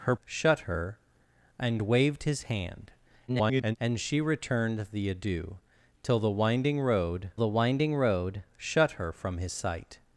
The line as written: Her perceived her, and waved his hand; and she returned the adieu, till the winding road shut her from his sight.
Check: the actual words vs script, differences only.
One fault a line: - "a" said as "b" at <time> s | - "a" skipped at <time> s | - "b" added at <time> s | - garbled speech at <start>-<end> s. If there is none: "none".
- "perceived" said as "shut" at 0.2 s
- garbled speech at 3.3-3.8 s
- "the winding road" added at 7.4 s